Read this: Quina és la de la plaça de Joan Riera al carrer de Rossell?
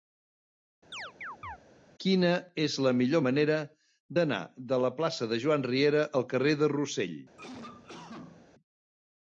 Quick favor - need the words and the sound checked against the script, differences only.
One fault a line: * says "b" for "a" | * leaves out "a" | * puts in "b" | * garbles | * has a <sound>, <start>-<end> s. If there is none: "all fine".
* has a chirp, 0.9-1.6 s
* puts in "millor manera d'anar"
* has a cough, 7.4-8.5 s